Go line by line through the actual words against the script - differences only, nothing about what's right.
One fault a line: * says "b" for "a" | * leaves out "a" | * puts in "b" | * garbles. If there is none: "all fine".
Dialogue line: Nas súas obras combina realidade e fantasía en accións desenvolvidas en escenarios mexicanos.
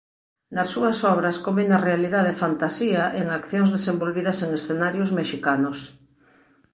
all fine